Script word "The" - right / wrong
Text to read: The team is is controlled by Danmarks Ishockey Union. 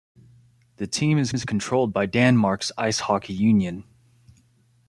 right